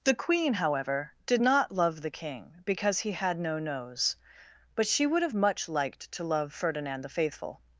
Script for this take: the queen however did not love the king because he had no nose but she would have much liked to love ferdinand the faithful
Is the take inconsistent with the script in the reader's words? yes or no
no